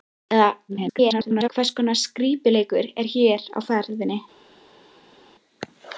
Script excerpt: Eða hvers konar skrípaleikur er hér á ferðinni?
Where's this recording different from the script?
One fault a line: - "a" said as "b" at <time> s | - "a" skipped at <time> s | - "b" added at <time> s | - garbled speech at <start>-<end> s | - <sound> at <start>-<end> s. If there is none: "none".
- garbled speech at 0.7-1.5 s